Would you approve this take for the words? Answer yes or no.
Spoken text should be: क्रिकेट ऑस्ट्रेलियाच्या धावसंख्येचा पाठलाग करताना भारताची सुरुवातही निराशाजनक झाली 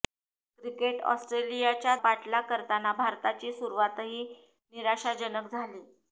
no